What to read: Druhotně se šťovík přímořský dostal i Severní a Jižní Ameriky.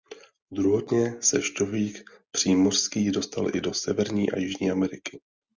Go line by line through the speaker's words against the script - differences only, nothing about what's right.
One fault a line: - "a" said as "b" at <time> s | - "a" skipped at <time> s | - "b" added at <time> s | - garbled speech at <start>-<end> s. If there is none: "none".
- "do" added at 3.6 s